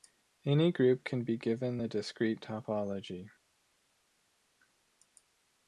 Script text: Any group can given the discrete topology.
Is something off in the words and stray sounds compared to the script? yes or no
yes